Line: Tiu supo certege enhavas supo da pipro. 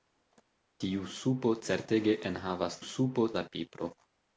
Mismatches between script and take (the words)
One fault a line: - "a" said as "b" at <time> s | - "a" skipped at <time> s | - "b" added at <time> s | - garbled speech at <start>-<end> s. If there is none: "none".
none